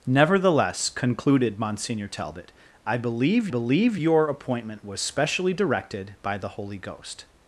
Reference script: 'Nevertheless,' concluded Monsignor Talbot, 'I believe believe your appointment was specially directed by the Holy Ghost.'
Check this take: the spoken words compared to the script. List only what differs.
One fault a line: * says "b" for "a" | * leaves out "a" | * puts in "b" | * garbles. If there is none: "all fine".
all fine